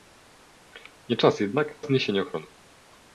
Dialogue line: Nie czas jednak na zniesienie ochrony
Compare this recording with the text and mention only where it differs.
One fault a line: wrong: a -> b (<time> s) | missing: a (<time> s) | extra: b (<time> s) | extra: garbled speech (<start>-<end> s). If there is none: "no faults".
missing: na (1.9 s)